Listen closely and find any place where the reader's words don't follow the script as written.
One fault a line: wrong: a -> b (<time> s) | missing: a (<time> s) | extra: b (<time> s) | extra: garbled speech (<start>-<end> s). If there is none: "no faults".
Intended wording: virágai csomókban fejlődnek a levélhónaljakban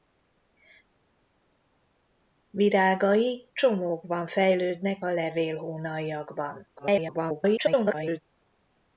extra: garbled speech (6.8-8.2 s)